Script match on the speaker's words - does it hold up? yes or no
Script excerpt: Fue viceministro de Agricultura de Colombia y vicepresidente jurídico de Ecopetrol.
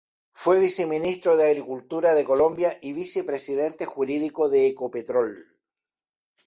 yes